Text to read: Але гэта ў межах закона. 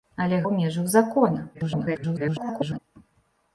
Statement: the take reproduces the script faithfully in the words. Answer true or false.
false